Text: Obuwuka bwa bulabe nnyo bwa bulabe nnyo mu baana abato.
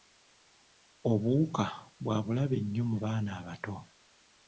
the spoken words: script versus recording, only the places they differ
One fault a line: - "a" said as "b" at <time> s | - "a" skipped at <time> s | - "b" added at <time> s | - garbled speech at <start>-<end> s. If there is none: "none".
- "bwa bulabe nnyo" skipped at 2.8 s